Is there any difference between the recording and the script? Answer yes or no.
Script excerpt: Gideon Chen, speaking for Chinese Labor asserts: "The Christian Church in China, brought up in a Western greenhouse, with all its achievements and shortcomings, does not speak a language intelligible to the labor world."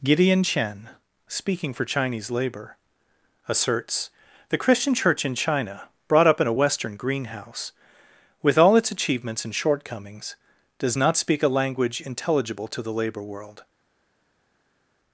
no